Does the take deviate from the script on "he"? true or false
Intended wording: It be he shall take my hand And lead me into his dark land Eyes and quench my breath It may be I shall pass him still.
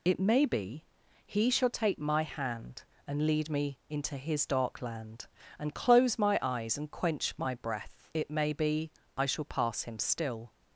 false